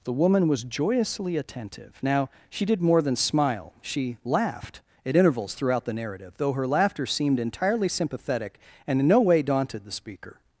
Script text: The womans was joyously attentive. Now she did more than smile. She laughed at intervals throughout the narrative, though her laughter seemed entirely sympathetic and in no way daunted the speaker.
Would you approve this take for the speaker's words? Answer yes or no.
no